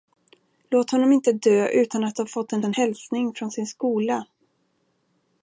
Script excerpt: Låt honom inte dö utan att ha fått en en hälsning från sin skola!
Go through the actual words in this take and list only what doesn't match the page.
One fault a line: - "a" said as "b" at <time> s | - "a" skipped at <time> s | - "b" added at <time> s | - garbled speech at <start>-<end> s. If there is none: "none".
none